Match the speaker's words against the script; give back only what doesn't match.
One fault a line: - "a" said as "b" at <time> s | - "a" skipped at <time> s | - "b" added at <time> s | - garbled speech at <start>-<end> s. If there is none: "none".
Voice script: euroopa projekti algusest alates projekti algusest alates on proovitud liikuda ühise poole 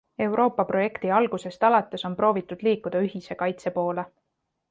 - "projekti algusest alates" skipped at 2.0 s
- "kaitse" added at 3.4 s